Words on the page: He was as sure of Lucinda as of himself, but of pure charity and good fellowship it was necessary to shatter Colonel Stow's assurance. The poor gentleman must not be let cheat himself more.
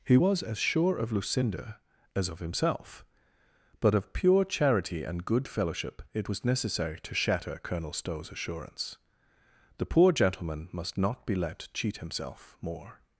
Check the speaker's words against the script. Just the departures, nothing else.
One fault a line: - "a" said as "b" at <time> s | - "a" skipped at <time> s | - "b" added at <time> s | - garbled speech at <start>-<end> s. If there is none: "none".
none